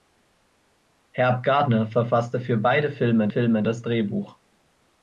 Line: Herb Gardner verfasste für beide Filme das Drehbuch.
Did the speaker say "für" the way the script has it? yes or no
yes